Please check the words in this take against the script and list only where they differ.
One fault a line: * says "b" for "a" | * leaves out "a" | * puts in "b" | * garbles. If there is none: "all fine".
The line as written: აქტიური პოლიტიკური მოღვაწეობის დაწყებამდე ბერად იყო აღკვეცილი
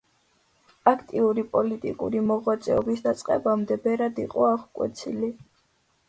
all fine